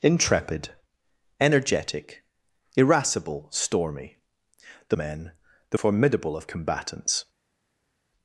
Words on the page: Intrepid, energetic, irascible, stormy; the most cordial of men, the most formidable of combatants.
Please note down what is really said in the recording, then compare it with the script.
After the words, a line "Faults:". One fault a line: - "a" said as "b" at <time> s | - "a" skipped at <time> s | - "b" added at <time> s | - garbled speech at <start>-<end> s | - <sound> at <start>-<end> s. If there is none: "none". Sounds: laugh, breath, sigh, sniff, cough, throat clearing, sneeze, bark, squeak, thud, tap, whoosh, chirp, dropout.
Intrepid, energetic, irascible, stormy; the men, the formidable of combatants.
Faults:
- "most cordial of" skipped at 5.0 s
- "most" skipped at 5.8 s